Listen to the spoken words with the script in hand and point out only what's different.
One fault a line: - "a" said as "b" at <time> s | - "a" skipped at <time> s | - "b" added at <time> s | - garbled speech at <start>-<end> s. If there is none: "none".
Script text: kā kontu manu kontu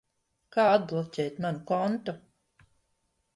- "kontu" said as "atbloķēt" at 0.7 s